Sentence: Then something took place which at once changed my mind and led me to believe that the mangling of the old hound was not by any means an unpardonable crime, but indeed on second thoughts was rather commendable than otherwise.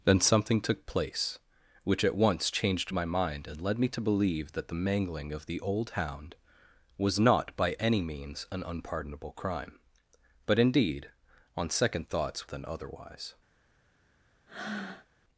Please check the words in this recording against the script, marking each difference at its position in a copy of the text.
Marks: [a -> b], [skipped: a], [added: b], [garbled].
Then something took place which at once changed my mind and led me to believe that the mangling of the old hound was not by any means an unpardonable crime, but indeed on second thoughts [skipped: was rather commendable] than otherwise.